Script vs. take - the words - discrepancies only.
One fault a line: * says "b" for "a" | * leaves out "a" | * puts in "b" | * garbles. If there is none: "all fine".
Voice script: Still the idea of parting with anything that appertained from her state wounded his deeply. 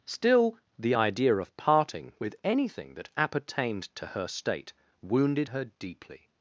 * says "to" for "from"
* says "her" for "his"